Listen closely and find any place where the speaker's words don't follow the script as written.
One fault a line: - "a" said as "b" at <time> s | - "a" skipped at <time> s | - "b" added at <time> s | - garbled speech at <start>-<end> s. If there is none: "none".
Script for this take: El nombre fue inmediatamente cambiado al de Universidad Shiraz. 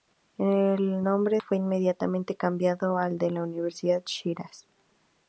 none